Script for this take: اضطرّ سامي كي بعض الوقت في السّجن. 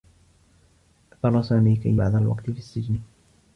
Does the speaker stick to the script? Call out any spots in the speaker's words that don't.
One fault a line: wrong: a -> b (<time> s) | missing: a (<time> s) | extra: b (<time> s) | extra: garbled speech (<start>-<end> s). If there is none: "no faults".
no faults